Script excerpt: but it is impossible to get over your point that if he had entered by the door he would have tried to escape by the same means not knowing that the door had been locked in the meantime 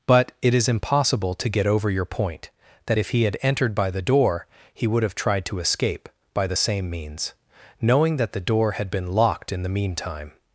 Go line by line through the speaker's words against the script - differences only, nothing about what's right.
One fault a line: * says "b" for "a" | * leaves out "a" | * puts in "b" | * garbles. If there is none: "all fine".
* leaves out "not"